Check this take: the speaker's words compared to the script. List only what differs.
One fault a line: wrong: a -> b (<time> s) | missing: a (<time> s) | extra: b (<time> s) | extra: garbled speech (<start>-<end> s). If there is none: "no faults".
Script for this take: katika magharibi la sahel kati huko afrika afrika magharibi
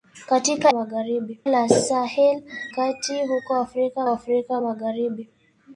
no faults